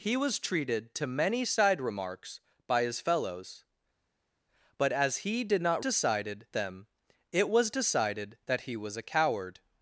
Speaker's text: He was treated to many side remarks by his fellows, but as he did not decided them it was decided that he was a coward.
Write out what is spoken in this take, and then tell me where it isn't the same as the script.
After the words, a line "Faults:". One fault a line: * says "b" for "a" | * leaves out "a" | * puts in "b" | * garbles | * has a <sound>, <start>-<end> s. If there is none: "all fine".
He was treated to many side remarks by his fellows, but as he did not decided them it was decided that he was a coward.
Faults:
all fine